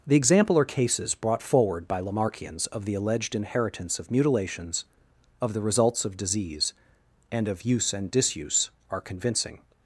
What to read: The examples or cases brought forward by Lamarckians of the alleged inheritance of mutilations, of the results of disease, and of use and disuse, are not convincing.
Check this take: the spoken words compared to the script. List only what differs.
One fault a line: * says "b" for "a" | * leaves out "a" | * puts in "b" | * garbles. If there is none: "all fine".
* says "example" for "examples"
* leaves out "not"